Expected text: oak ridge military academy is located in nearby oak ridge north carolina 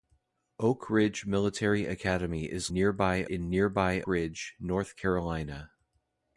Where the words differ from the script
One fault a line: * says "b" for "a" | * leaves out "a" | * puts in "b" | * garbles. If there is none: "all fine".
* says "nearby" for "located"
* leaves out "oak"